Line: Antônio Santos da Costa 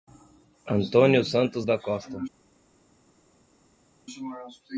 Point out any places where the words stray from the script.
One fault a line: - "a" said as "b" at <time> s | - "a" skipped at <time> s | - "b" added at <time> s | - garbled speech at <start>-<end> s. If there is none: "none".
none